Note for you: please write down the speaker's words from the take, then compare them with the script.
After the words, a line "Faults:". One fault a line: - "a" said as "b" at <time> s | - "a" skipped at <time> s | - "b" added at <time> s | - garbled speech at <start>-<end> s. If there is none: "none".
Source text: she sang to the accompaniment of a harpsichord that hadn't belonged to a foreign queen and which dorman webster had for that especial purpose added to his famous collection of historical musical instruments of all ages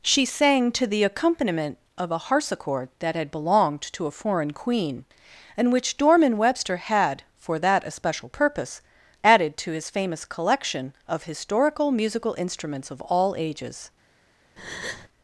she sang to the accompaniment of a harpsichord that had belonged to a foreign queen and which dorman webster had for that especial purpose added to his famous collection of historical musical instruments of all ages
Faults:
- "hadn't" said as "had" at 3.2 s